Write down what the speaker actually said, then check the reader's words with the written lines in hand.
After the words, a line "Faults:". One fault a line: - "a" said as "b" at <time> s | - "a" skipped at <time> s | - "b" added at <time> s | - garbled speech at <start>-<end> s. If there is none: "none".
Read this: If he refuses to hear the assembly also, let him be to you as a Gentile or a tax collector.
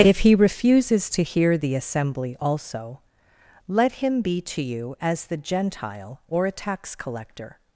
If he refuses to hear the assembly also, let him be to you as the Gentile or a tax collector.
Faults:
- "a" said as "the" at 5.2 s